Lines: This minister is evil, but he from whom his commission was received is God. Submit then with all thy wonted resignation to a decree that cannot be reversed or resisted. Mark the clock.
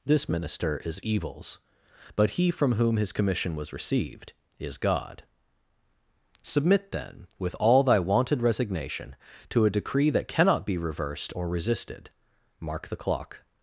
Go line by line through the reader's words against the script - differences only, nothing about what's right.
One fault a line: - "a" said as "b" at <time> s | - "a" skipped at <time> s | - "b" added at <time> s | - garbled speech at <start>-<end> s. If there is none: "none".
- "evil" said as "evils" at 1.0 s